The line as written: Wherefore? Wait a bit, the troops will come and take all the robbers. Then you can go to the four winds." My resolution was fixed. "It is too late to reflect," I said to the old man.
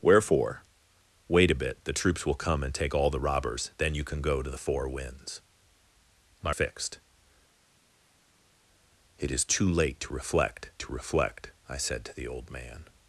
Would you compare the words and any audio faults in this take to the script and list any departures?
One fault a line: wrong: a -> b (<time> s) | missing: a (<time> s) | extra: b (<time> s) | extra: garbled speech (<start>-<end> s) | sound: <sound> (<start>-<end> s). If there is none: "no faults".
missing: resolution was (6.5 s)
extra: to reflect (10.8 s)